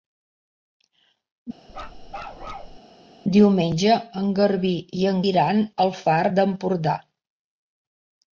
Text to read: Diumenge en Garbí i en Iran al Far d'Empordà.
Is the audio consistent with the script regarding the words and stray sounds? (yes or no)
no